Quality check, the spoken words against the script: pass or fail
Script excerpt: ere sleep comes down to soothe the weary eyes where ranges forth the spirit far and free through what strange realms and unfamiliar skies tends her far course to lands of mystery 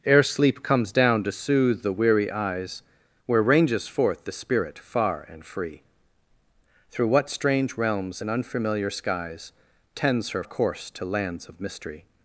fail